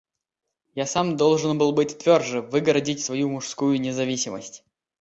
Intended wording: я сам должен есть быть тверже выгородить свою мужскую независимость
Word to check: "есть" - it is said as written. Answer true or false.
false